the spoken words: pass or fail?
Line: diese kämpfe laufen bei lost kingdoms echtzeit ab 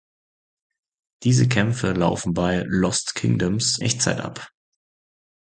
pass